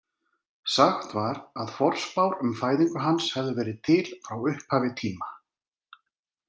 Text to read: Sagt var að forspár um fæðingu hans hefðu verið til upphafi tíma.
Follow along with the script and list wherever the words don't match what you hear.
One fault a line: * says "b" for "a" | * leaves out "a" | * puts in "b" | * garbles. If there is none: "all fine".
* puts in "frá"